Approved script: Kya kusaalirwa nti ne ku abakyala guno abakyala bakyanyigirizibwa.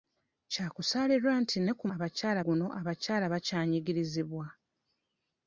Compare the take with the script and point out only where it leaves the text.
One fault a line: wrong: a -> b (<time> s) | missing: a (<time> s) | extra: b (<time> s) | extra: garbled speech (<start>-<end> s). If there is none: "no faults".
no faults